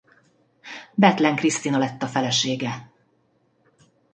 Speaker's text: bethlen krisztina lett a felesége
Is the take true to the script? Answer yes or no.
yes